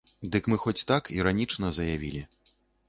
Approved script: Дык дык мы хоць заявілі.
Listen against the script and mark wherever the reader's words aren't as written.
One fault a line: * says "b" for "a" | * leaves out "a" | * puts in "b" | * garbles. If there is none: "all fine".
* leaves out "дык"
* puts in "так іранічна"